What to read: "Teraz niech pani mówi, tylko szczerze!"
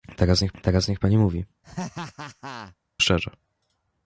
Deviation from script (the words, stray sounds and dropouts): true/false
true